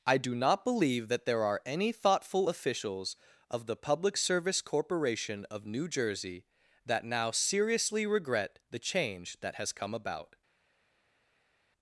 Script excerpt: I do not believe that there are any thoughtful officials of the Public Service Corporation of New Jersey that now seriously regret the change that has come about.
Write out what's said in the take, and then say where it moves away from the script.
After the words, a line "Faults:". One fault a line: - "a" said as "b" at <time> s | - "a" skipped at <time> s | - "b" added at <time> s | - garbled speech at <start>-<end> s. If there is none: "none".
I do not believe that there are any thoughtful officials of the Public Service Corporation of New Jersey that now seriously regret the change that has come about.
Faults:
none